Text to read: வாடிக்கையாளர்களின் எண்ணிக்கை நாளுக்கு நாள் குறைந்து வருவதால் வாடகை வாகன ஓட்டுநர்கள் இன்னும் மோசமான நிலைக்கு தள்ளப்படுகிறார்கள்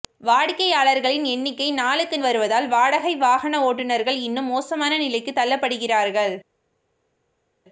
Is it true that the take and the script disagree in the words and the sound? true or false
true